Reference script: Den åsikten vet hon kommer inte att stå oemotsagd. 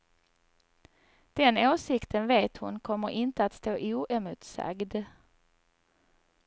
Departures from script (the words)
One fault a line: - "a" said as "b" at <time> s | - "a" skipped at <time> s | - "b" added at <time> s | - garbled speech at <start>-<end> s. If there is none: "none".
none